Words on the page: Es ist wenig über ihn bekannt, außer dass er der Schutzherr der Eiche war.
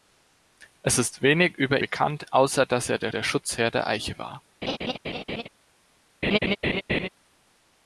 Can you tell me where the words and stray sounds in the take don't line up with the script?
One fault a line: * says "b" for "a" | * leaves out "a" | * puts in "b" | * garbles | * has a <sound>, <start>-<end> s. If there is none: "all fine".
* leaves out "ihn"
* puts in "der"
* has a laugh, 4.6-5.5 s
* has a laugh, 6.2-7.1 s